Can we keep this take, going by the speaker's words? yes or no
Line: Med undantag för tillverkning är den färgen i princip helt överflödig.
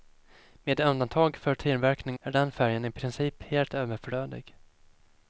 yes